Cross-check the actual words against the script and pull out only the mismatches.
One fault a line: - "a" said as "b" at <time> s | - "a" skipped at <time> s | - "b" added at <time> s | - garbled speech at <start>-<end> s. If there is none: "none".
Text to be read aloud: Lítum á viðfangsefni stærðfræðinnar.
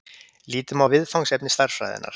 none